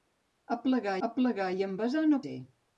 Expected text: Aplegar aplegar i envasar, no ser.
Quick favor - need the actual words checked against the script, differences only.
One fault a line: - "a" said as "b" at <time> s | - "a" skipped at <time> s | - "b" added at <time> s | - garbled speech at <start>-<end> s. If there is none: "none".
none